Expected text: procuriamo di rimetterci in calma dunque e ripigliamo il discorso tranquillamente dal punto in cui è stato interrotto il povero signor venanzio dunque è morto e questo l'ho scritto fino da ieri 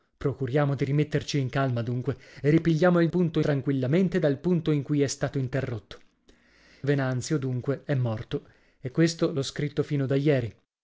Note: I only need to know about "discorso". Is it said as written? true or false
false